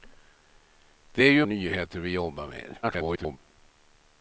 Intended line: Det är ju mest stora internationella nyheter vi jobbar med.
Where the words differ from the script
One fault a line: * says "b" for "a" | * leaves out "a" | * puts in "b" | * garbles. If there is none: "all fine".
* leaves out "mest stora internationella"
* garbles